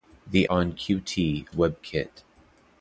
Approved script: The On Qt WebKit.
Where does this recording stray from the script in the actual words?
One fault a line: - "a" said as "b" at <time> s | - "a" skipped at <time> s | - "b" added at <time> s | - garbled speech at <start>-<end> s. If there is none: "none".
none